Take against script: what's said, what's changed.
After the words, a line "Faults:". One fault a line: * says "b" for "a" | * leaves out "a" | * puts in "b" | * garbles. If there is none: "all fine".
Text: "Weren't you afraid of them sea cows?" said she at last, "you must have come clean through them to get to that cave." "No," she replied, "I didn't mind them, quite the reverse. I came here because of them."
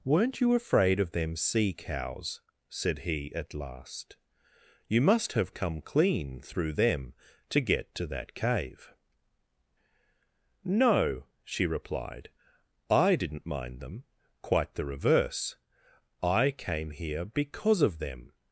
"Weren't you afraid of them sea cows?" said he at last, "you must have come clean through them to get to that cave." "No," she replied, "I didn't mind them, quite the reverse. I came here because of them."
Faults:
* says "he" for "she"